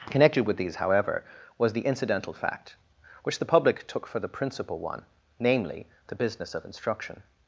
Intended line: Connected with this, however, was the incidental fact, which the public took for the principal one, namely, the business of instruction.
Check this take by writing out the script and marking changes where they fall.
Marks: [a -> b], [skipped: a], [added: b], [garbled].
Connected with [this, -> these] however, was the incidental fact, which the public took for the principal one, namely, the business of instruction.